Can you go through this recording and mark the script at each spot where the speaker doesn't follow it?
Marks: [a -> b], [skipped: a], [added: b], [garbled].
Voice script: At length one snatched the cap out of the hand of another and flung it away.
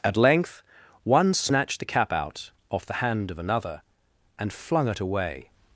At length one snatched the cap out [of -> off] the hand of another and flung it away.